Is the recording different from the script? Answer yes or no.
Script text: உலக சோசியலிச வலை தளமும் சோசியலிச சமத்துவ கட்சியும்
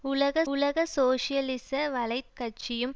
yes